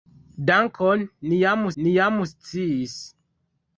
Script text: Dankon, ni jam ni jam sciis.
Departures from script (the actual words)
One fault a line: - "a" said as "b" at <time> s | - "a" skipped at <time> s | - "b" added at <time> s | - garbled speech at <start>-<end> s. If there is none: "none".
none